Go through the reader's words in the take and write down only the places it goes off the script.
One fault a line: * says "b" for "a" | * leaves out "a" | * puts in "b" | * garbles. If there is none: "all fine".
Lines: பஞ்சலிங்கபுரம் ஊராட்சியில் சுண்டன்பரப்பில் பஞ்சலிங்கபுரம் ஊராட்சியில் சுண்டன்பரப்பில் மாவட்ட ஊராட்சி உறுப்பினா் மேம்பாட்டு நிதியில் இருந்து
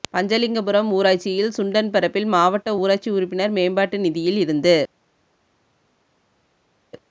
* leaves out "பஞ்சலிங்கபுரம் ஊராட்சியில் சுண்டன்பரப்பில்"